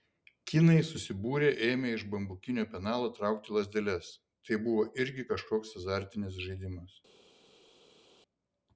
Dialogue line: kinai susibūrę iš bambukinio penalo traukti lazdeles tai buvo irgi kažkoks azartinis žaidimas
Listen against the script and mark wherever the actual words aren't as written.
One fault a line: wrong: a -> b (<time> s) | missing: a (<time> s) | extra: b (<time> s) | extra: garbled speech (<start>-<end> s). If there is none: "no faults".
extra: ėmė (1.7 s)